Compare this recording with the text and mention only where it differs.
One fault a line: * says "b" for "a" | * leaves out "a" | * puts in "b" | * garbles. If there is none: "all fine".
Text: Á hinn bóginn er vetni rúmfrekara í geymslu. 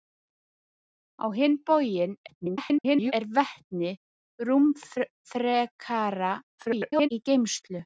* garbles
* garbles